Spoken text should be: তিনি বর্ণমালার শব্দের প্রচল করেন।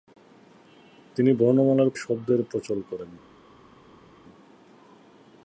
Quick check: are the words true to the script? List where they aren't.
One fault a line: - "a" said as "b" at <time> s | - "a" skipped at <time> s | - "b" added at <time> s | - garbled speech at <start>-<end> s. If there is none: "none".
none